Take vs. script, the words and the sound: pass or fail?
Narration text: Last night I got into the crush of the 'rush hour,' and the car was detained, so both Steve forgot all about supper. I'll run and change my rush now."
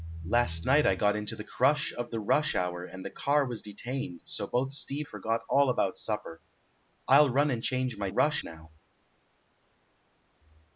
pass